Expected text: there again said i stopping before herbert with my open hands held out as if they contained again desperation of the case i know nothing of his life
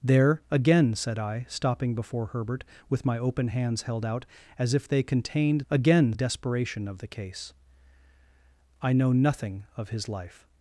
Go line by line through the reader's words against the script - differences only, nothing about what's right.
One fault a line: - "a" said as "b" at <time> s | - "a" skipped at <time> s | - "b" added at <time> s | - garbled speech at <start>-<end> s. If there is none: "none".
none